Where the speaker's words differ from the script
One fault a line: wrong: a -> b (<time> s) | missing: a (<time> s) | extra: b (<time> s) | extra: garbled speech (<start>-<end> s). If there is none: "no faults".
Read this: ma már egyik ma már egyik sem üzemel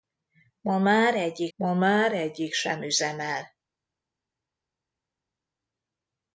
no faults